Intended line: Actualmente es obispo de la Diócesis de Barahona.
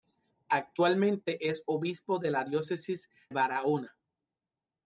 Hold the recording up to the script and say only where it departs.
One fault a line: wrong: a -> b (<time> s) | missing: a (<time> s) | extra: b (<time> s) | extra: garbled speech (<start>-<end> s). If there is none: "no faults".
missing: de (3.1 s)